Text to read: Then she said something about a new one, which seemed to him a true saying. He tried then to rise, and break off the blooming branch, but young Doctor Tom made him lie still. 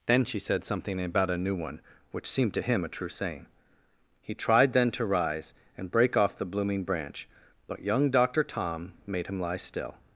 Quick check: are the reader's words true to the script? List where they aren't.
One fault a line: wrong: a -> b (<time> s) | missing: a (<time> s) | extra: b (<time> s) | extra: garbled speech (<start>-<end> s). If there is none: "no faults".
no faults